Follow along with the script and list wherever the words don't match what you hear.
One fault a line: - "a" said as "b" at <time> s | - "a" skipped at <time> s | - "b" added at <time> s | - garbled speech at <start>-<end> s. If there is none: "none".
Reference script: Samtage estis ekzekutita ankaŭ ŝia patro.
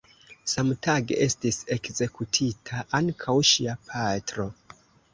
none